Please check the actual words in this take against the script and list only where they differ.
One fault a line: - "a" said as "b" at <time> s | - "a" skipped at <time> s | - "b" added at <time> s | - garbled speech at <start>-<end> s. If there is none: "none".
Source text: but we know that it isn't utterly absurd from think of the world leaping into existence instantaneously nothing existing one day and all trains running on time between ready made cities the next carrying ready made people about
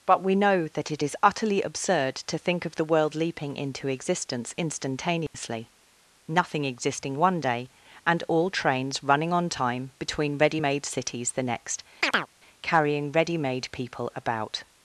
- "isn't" said as "is" at 1.0 s
- "from" said as "to" at 2.2 s